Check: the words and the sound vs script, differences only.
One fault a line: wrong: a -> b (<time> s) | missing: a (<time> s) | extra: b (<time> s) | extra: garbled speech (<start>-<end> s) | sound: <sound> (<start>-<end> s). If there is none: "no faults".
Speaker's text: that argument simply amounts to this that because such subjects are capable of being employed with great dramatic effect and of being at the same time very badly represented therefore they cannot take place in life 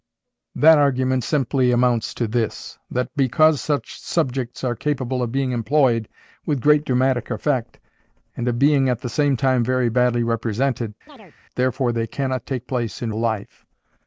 sound: chirp (11.1-11.4 s)